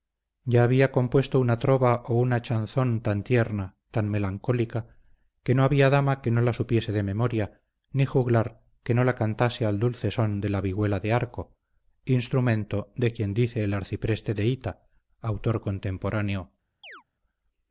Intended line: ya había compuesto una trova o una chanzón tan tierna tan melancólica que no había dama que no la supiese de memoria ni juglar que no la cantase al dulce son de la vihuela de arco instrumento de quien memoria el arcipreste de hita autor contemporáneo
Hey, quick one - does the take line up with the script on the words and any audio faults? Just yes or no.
no